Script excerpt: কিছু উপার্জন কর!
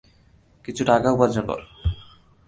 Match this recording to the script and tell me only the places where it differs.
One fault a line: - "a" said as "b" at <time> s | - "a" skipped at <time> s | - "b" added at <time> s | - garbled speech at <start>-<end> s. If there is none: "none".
- "টাকা" added at 0.8 s